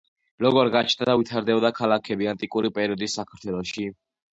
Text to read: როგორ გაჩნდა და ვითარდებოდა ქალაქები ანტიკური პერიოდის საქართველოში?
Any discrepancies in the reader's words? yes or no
no